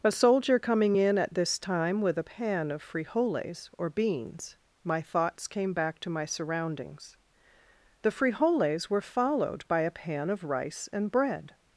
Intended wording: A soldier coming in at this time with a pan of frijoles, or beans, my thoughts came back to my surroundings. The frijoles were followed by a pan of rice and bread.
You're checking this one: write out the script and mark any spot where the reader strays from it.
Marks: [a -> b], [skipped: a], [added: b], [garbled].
A soldier coming in at this time with a pan of frijoles, or beans, my thoughts came back to my surroundings. The frijoles were followed by a pan of rice and bread.